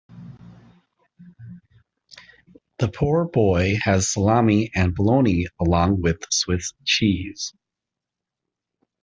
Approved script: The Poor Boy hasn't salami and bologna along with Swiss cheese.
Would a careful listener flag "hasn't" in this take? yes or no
yes